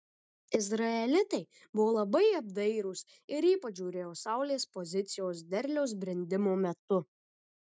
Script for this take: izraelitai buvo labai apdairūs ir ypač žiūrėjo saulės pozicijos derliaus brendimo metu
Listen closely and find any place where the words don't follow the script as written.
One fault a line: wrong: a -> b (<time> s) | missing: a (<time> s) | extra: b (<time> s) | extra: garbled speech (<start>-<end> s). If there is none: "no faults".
no faults